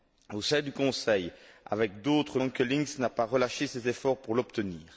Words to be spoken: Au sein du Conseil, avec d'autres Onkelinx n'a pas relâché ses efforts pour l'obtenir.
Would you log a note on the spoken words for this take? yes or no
no